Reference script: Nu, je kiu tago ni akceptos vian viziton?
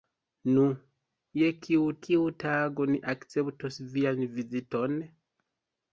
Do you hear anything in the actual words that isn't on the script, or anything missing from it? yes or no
yes